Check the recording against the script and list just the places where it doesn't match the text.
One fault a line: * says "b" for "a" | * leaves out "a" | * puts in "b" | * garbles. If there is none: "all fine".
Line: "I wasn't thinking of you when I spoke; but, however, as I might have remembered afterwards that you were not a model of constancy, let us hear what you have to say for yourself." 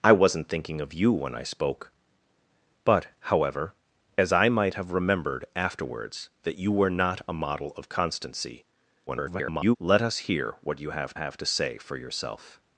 * garbles
* puts in "have"